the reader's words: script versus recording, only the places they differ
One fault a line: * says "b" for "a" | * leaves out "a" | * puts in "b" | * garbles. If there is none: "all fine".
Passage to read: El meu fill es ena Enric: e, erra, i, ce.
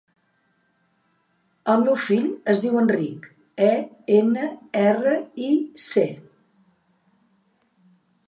* says "diu" for "ena"
* puts in "ena"